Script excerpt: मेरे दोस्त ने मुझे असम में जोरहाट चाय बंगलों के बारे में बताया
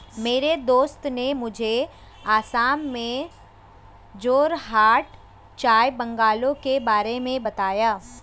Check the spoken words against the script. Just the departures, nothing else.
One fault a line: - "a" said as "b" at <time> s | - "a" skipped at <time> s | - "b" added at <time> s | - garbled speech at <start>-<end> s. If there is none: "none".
none